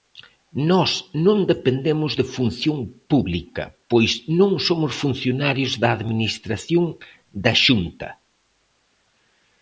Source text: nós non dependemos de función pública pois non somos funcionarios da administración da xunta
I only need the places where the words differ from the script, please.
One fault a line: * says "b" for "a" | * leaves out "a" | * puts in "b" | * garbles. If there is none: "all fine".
all fine